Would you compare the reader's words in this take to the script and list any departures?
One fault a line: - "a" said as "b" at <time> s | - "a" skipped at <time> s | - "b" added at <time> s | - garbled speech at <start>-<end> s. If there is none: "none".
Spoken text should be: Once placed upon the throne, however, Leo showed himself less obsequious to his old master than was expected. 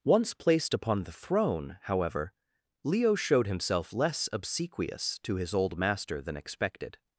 - "was" skipped at 6.4 s